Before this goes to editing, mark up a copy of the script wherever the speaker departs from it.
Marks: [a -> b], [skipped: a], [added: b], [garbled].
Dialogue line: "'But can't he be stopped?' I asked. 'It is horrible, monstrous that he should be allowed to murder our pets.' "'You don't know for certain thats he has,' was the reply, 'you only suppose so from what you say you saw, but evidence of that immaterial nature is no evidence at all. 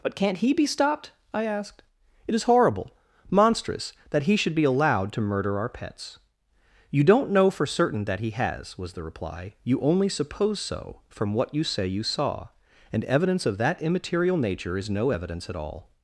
"'But can't he be stopped?' I asked. 'It is horrible, monstrous that he should be allowed to murder our pets.' "'You don't know for certain [thats -> that] he has,' was the reply, 'you only suppose so from what you say you saw, [but -> and] evidence of that immaterial nature is no evidence at all.